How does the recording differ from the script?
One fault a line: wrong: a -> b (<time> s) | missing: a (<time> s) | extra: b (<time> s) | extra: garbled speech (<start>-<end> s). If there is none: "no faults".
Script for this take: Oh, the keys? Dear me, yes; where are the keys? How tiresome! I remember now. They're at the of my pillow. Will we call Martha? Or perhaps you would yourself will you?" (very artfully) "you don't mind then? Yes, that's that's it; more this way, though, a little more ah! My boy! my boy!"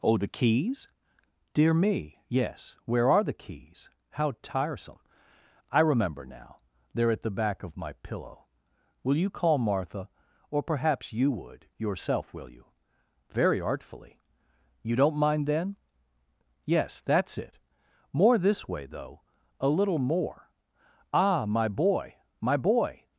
extra: back (7.4 s)
wrong: we -> you (9.2 s)
missing: that's (17.4 s)